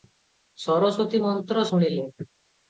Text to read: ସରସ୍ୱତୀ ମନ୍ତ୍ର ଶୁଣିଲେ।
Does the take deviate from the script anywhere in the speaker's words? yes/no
no